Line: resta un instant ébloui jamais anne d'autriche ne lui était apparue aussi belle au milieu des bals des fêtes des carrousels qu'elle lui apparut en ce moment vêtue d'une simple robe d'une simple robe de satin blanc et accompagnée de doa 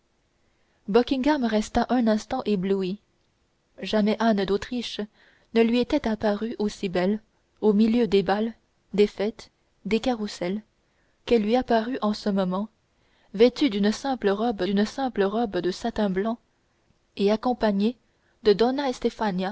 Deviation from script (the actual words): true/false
false